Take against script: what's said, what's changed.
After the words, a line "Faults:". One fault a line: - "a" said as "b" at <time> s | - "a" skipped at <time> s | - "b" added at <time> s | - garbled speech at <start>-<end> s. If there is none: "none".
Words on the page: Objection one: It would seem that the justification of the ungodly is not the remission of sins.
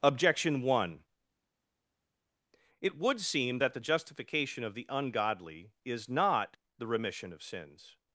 Objection one: It would seem that the justification of the ungodly is not the remission of sins.
Faults:
none